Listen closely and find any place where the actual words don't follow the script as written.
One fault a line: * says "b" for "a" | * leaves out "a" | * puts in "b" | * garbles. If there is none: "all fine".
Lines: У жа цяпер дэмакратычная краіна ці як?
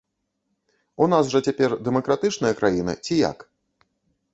* puts in "нас"